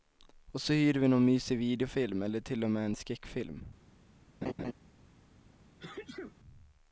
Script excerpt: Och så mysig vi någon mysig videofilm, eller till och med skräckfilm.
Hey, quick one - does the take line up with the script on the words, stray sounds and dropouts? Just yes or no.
no